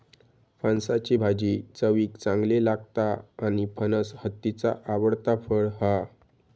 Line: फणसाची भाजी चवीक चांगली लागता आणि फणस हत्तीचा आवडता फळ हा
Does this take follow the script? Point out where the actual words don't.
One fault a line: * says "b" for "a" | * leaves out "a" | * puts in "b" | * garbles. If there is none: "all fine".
all fine